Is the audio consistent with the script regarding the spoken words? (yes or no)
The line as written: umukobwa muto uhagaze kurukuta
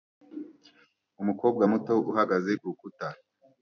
yes